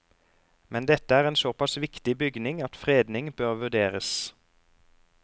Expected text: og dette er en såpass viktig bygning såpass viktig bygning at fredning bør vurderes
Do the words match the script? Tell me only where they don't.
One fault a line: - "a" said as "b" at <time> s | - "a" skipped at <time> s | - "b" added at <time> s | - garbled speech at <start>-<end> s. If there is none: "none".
- "og" said as "men" at 0.7 s
- "såpass viktig bygning" skipped at 2.6 s